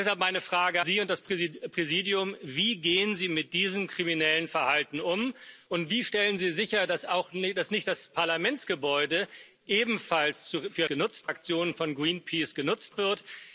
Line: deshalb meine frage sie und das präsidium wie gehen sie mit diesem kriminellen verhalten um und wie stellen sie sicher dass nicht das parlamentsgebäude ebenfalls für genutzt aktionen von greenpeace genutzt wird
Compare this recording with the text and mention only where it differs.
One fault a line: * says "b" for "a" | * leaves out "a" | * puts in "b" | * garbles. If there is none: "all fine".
all fine